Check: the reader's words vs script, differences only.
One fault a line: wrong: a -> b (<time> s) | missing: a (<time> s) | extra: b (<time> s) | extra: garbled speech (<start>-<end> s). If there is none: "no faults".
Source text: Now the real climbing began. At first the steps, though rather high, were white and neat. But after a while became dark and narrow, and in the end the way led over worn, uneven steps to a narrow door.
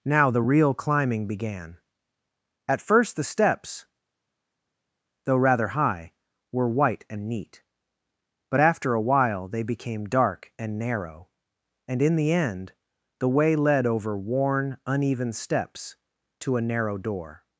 extra: they (9.5 s)